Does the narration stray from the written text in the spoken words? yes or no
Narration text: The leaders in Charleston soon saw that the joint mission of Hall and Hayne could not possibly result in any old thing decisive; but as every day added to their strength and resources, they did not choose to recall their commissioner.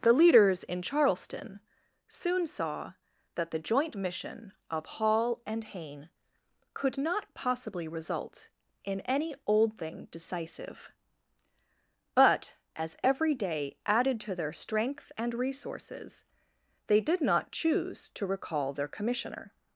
no